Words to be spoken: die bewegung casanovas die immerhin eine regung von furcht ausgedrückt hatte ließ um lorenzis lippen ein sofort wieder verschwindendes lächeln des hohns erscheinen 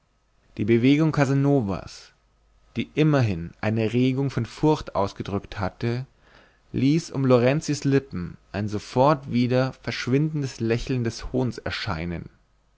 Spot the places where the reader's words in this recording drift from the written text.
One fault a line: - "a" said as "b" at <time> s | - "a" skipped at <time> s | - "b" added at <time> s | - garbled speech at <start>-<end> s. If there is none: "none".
none